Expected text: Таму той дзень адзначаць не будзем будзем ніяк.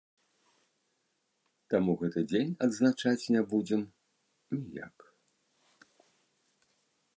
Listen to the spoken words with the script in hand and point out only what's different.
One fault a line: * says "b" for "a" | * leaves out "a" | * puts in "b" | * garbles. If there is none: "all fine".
* says "гэты" for "той"
* leaves out "будзем"